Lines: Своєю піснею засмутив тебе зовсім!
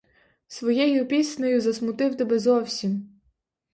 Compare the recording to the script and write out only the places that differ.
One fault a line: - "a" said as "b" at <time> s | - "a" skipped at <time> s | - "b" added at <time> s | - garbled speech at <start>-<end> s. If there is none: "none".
none